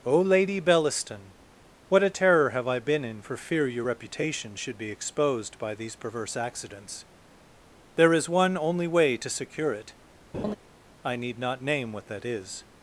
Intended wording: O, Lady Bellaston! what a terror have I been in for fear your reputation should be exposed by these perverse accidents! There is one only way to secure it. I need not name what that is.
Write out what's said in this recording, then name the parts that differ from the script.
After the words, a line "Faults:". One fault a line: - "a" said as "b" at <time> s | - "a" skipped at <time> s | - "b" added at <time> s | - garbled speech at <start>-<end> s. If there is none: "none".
O, Lady Bellaston! what a terror have I been in for fear your reputation should be exposed by these perverse accidents! There is one only way to secure it. I need not name what that is.
Faults:
none